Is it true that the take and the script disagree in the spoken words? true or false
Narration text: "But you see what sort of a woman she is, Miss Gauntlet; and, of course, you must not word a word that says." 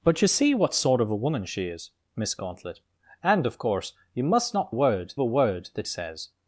false